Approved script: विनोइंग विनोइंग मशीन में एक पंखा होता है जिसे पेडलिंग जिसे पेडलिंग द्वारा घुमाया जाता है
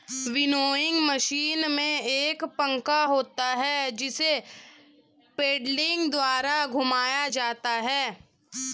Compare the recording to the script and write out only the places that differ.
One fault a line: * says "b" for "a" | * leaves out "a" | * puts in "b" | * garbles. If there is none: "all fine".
* leaves out "विनोइंग"
* leaves out "जिसे पेडलिंग"